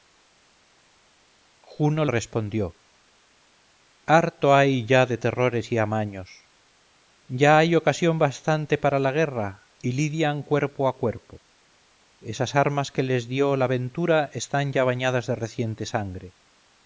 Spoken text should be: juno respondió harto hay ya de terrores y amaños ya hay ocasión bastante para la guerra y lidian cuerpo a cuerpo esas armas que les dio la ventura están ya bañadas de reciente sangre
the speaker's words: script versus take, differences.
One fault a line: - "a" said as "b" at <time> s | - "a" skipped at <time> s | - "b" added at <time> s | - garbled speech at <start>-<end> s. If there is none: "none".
none